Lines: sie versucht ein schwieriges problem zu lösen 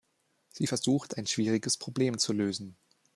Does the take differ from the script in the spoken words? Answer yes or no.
no